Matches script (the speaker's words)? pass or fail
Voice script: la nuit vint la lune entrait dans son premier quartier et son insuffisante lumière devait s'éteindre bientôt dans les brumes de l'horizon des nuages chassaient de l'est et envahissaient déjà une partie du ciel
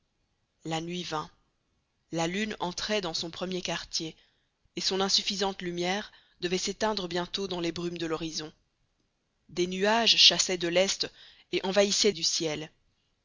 fail